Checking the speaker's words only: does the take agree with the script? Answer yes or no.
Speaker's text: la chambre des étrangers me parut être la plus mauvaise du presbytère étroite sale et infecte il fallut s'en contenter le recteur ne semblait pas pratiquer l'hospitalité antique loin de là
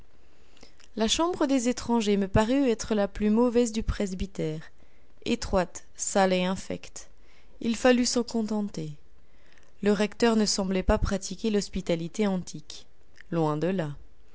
yes